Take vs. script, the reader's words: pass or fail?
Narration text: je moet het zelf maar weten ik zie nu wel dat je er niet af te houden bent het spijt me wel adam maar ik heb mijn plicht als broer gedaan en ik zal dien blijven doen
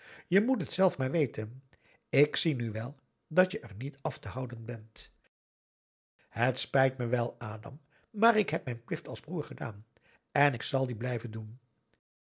pass